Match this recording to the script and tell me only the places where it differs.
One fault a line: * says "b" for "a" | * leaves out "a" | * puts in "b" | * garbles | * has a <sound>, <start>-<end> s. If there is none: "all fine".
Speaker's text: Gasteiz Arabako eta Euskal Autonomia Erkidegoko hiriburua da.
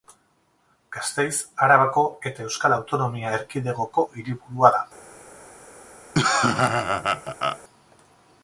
* has a laugh, 6.1-7.6 s